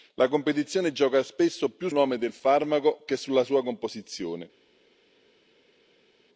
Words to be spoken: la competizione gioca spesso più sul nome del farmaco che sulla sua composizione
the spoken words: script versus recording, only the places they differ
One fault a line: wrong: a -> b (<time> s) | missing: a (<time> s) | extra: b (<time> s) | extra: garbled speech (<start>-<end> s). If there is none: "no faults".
missing: sul (1.9 s)